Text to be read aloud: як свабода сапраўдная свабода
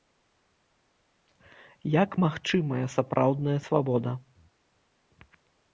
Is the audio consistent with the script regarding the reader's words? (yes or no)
no